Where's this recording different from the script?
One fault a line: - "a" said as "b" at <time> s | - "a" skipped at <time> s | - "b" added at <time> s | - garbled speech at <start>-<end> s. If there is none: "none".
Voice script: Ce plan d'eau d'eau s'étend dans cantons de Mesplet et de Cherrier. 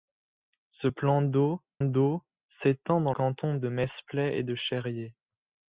none